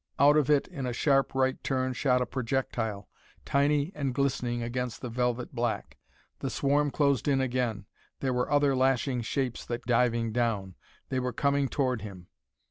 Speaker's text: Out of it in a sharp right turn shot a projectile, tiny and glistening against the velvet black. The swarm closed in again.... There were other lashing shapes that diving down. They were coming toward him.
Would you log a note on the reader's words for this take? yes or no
no